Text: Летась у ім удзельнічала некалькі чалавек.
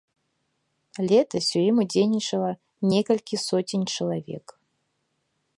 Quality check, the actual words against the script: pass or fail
fail